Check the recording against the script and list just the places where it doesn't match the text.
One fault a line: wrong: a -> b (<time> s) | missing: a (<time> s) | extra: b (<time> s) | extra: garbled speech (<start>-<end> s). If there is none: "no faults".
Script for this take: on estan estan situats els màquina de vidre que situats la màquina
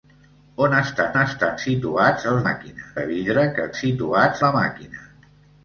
no faults